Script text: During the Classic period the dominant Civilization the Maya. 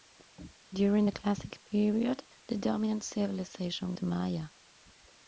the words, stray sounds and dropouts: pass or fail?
pass